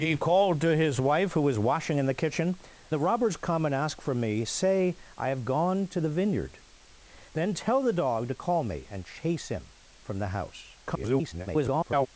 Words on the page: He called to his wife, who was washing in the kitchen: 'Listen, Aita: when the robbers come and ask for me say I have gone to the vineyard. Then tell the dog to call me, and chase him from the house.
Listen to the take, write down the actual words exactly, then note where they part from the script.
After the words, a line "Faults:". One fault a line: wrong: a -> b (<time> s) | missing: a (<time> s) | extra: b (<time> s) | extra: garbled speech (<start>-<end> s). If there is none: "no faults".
He called to his wife, who was washing in the kitchen: 'The robbers come and ask for me say I have gone to the vineyard. Then tell the dog to call me, and chase him from the house. [garbled]
Faults:
missing: Listen Aita when (2.6 s)
extra: garbled speech (10.8-12.1 s)